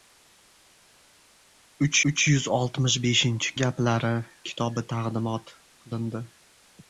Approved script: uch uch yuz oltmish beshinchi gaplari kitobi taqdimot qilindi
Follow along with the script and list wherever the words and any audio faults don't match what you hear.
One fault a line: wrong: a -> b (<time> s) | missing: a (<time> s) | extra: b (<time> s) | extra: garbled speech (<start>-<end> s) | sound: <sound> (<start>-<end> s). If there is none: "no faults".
no faults